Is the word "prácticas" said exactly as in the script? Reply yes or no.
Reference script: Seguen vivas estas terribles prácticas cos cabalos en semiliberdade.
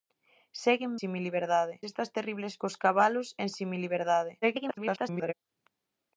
no